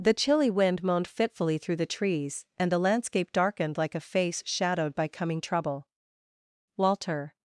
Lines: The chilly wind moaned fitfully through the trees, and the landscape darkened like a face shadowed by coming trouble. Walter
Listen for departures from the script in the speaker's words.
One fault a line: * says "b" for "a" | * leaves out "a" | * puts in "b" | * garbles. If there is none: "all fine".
all fine